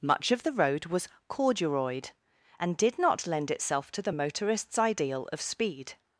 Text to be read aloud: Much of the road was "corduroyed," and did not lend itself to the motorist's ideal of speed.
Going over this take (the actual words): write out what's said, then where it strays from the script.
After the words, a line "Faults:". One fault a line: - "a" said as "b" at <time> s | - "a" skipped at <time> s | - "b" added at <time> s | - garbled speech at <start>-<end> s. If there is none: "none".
Much of the road was "corduroyed," and did not lend itself to the motorist's ideal of speed.
Faults:
none